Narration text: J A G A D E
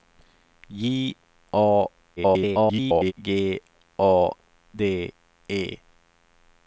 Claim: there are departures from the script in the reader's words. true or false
true